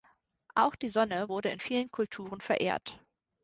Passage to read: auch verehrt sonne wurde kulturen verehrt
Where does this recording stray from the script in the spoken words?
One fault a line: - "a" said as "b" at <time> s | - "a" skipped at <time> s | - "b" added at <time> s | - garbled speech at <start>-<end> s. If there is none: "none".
- "verehrt" said as "die" at 0.8 s
- "in vielen" added at 1.5 s